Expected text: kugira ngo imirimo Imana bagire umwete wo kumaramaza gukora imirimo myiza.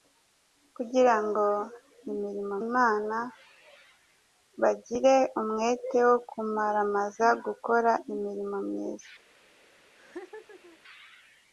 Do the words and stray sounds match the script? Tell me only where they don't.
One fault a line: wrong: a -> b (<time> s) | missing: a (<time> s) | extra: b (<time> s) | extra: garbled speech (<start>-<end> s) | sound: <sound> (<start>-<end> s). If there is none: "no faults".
sound: laugh (10.0-10.8 s)